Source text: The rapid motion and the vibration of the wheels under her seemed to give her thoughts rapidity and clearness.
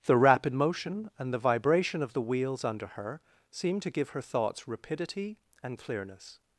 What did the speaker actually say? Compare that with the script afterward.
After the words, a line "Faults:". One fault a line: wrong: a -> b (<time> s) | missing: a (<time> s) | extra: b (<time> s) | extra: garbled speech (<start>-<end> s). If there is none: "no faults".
The rapid motion and the vibration of the wheels under her seemed to give her thoughts rapidity and clearness.
Faults:
no faults